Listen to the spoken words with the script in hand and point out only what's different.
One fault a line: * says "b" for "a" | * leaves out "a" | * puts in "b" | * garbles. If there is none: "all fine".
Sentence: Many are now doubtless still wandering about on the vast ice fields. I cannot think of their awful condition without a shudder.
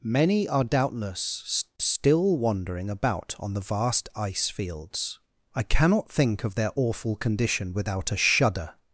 * leaves out "now"